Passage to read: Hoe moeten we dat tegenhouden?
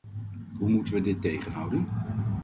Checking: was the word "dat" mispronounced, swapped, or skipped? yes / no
yes